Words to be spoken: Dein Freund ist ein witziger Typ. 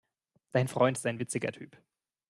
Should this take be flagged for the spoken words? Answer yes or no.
no